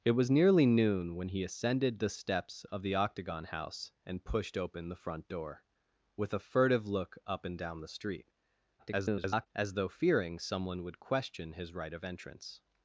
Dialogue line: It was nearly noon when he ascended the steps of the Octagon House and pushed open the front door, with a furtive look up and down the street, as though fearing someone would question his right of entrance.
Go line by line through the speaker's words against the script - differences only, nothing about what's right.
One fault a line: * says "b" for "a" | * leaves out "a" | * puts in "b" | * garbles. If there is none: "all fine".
* garbles